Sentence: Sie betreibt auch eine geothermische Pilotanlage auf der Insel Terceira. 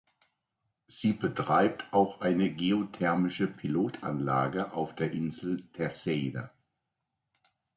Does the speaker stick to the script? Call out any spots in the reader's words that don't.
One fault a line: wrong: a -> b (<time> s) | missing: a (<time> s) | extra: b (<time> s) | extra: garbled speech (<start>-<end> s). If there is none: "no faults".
no faults